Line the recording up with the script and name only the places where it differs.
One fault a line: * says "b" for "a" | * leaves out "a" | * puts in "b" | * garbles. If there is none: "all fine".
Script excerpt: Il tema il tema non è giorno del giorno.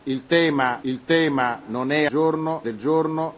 all fine